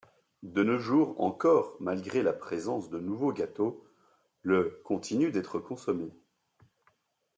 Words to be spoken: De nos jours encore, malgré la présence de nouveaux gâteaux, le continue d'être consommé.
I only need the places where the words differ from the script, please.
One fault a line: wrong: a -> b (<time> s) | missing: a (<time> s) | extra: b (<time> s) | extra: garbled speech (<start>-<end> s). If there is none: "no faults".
no faults